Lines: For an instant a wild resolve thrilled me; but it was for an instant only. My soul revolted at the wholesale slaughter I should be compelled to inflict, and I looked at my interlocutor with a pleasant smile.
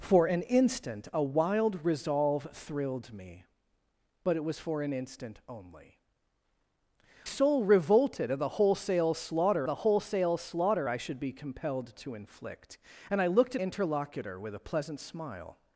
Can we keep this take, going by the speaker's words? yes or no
no